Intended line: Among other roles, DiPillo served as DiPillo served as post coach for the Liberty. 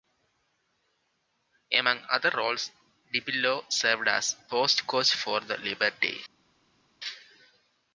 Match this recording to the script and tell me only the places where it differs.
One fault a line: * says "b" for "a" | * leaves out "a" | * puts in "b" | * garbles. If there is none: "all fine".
* leaves out "DiPillo served as"